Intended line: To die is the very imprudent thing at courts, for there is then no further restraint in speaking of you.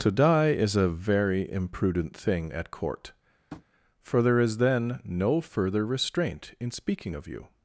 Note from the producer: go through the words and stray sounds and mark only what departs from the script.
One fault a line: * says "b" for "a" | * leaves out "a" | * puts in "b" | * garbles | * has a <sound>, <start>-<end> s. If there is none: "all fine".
* says "a" for "the"
* says "court" for "courts"
* has a tap, 3.5-3.6 s